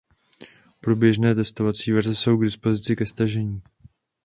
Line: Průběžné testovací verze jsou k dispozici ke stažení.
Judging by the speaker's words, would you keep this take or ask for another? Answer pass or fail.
pass